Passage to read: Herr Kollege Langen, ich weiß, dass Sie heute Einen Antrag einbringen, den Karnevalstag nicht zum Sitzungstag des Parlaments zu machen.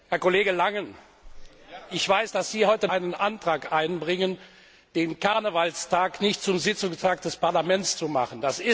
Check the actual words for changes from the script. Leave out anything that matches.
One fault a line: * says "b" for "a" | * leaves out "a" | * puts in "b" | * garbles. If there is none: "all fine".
all fine